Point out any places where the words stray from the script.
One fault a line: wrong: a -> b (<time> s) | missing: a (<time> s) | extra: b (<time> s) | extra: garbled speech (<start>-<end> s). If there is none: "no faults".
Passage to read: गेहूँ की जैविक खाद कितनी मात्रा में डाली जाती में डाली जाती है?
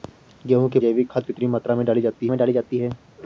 no faults